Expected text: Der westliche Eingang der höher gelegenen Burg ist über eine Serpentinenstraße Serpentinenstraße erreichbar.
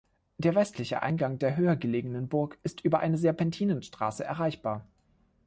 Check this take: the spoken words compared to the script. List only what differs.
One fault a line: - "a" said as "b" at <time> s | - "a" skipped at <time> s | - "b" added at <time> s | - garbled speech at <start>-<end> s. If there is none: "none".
- "Serpentinenstraße" skipped at 4.2 s